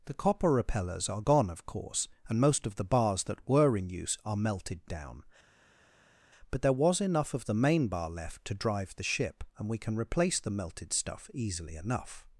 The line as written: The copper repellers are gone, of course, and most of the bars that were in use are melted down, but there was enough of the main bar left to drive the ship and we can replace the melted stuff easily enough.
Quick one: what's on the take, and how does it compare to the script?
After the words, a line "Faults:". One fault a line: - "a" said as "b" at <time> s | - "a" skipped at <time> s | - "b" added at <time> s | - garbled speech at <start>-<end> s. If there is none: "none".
The copper repellers are gone, of course, and most of the bars that were in use are melted down, but there was enough of the main bar left to drive the ship and we can replace the melted stuff easily enough.
Faults:
none